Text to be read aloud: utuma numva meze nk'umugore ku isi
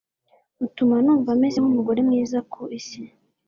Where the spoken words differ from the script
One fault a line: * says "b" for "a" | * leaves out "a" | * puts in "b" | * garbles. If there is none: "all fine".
* puts in "mwiza"